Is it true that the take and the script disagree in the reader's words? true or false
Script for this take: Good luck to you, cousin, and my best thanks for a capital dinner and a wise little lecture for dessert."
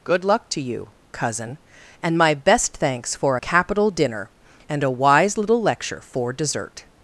false